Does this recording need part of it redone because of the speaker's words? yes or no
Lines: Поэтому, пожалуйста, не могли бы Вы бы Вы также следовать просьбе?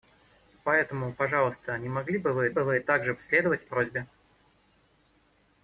no